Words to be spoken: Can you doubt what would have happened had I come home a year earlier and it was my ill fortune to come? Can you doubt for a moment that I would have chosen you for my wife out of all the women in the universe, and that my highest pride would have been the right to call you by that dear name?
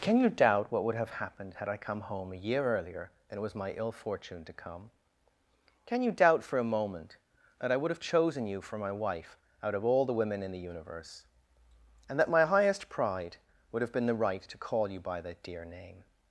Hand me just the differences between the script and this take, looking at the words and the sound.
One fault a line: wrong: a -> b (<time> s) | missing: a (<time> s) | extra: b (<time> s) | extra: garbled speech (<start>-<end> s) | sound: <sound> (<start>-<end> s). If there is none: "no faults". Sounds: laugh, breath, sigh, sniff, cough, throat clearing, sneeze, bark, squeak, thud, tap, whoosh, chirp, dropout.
no faults